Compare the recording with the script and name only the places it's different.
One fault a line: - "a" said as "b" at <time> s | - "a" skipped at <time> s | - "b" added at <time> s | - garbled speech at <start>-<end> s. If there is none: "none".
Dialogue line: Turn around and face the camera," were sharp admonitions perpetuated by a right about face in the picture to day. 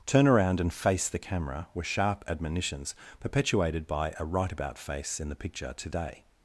none